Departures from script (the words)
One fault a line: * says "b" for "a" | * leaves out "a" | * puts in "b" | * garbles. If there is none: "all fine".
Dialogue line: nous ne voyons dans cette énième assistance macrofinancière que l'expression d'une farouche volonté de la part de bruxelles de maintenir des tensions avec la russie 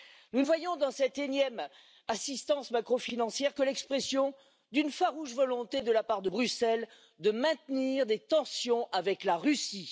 * leaves out "ne"